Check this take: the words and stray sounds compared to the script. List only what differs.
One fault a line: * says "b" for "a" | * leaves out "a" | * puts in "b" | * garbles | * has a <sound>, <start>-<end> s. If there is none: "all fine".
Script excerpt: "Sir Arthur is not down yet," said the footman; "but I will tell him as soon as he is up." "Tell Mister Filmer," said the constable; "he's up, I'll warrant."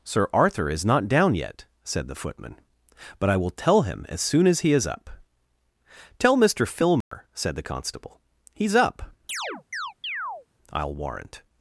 * has a dropout, 7.0-7.1 s
* has a chirp, 9.3-10.5 s